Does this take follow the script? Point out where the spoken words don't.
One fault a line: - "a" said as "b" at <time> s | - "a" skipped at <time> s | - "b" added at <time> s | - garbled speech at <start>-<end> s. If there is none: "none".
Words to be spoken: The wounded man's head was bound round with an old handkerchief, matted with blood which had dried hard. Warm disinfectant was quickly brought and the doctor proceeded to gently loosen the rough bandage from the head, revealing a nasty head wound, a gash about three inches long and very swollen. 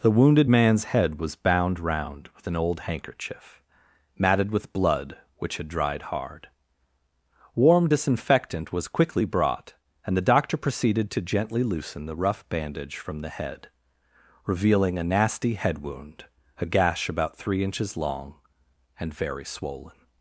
none